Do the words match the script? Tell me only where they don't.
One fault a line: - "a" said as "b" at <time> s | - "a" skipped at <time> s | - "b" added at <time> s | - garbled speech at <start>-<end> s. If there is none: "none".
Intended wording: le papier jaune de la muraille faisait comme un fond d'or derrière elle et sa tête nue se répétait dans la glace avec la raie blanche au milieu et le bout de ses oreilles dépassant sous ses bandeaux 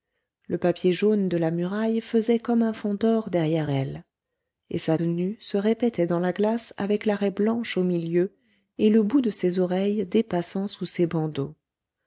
- "tête" skipped at 5.0 s